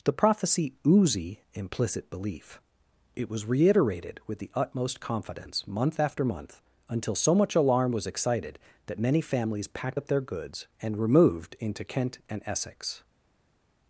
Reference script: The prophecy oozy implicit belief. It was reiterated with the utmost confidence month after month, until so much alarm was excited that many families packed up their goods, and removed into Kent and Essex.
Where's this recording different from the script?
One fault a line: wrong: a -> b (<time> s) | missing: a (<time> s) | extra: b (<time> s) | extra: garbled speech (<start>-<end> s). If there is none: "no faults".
no faults